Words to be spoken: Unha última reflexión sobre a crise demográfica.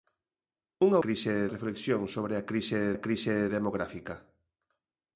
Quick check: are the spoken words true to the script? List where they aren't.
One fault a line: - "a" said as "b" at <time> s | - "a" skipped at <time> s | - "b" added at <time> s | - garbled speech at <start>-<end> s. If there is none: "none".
- "última" said as "crise" at 1.0 s
- "a crise" added at 2.9 s